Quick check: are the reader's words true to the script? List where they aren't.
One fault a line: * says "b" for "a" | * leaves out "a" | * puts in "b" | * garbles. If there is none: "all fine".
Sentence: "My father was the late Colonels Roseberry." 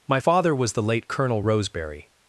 * says "Colonel" for "Colonels"